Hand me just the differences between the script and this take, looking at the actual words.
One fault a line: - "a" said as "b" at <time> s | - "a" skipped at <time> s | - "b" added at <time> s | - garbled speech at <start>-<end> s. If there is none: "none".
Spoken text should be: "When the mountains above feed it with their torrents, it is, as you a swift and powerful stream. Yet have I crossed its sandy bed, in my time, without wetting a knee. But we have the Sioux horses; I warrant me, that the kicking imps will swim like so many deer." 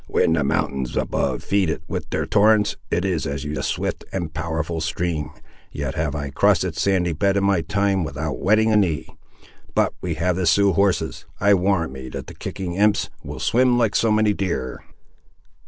none